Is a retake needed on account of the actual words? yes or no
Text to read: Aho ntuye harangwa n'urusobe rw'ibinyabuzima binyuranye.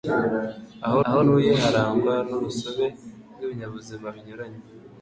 yes